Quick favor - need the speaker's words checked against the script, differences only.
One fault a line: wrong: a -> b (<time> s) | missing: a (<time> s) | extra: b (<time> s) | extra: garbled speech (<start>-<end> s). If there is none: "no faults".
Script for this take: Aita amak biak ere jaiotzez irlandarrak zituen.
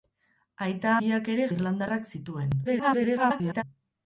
missing: amak (0.9 s)
missing: jaiotzez (1.5 s)
extra: garbled speech (2.6-3.6 s)